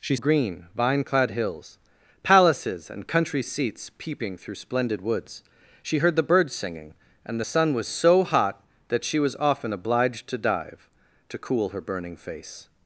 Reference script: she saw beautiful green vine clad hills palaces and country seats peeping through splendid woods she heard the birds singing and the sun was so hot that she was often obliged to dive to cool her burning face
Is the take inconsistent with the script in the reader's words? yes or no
yes